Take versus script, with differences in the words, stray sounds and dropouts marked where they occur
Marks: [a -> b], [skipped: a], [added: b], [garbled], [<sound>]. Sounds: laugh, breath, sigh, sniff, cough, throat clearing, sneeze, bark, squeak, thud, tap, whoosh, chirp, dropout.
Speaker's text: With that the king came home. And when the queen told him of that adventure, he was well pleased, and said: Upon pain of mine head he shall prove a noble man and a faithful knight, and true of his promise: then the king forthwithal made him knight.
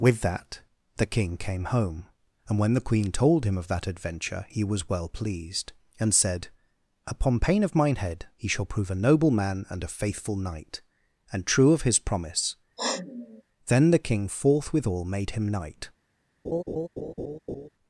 With that the king came home. And when the queen told him of that adventure, he was well pleased, and said: Upon pain of mine head he shall prove a noble man and a faithful knight, and true of his promise: [sniff] then the king forthwithal made him knight. [laugh]